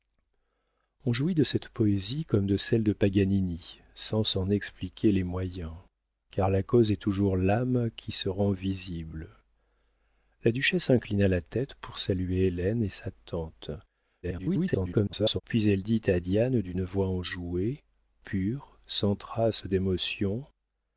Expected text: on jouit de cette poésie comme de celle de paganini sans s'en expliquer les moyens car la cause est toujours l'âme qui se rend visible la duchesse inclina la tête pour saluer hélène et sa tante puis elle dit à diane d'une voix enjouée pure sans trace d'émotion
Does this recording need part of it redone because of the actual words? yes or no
yes